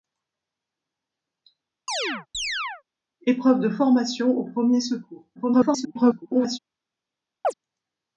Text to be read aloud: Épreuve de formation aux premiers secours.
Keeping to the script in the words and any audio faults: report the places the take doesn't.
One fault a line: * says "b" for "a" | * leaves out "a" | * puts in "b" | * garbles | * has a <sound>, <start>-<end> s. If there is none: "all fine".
* has a chirp, 1.9-2.8 s
* garbles
* has a chirp, 7.4-7.5 s